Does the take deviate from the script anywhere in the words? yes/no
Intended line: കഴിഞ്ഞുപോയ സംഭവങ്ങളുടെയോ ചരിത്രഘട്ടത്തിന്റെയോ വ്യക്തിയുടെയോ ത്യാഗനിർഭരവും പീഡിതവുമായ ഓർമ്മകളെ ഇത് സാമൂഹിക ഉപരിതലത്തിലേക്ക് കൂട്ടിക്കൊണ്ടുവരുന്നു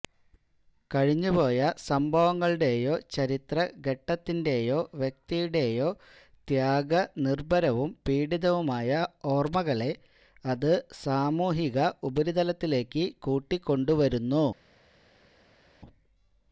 yes